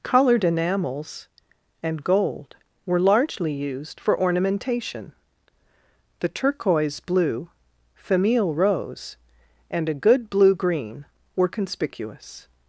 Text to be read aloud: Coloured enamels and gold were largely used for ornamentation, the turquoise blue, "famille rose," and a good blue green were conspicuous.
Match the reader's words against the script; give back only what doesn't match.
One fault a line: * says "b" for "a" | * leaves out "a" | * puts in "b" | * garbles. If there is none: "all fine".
all fine